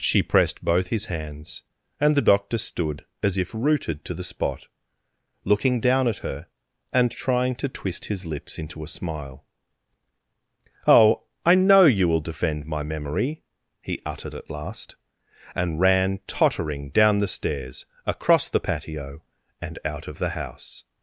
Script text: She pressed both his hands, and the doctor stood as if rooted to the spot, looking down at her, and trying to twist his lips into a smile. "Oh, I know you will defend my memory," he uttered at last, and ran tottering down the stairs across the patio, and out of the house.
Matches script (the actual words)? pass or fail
pass